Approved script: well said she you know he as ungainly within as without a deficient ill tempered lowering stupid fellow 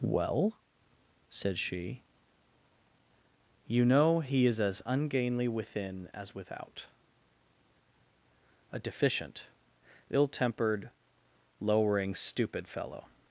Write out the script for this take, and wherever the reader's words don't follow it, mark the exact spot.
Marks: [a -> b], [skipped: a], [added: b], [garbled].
well said she you know he [added: is] as ungainly within as without a deficient ill tempered lowering stupid fellow